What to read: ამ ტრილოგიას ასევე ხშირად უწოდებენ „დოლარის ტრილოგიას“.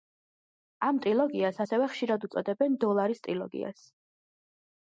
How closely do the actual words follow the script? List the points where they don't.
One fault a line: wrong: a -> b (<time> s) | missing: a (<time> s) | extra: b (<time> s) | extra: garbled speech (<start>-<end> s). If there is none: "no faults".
no faults